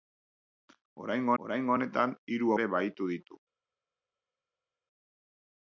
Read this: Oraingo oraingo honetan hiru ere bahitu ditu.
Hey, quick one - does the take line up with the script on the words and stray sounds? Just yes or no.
yes